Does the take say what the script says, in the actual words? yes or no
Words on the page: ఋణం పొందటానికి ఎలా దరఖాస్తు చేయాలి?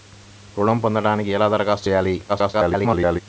no